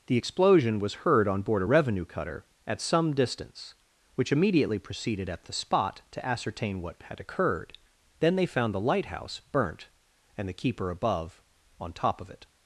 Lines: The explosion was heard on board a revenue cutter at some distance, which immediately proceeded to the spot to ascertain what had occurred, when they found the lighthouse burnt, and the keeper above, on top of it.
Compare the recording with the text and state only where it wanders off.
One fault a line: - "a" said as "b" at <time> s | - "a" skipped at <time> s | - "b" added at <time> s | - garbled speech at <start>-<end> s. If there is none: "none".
- "to" said as "at" at 5.3 s
- "when" said as "then" at 8.2 s